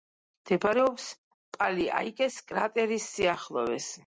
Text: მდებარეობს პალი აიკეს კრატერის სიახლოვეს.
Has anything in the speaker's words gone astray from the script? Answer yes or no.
no